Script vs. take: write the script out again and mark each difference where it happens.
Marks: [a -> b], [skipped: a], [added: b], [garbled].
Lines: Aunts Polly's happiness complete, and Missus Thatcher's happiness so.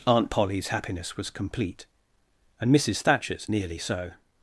[Aunts -> Aunt] Polly's happiness [added: was] complete, and Missus Thatcher's [happiness -> nearly] so.